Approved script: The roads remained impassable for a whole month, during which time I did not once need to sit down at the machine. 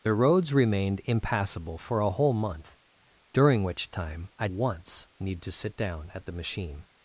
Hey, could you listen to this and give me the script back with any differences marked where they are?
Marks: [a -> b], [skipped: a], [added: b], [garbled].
The roads remained impassable for a whole month, during which time I [skipped: did not] once need to sit down at the machine.